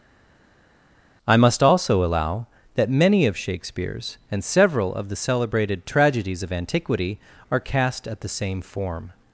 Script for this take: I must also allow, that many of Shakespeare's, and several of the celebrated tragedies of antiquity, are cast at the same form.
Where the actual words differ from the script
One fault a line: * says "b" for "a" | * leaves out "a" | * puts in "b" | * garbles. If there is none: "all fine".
all fine